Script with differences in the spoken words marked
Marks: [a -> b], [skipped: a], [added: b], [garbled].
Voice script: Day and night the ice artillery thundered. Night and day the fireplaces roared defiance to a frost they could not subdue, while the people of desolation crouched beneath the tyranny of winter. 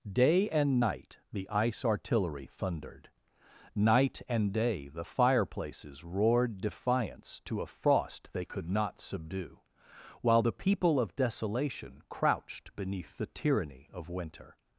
Day and night the ice artillery thundered. Night and day the fireplaces roared defiance to a frost they could not subdue, while the people of desolation crouched beneath the tyranny of winter.